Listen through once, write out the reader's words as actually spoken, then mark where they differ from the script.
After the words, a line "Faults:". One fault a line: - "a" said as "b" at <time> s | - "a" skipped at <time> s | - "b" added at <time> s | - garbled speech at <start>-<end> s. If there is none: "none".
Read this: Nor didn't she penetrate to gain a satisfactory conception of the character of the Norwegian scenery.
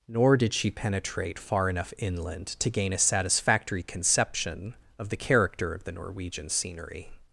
Nor did she penetrate far enough inland to gain a satisfactory conception of the character of the Norwegian scenery.
Faults:
- "didn't" said as "did" at 0.3 s
- "far enough inland" added at 1.4 s